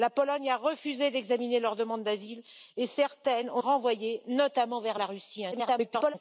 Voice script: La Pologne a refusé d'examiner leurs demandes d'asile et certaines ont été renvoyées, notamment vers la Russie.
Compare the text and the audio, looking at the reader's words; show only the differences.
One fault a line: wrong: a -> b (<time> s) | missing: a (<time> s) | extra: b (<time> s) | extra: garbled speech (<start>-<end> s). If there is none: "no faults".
missing: été (3.6 s)
extra: garbled speech (5.5-6.1 s)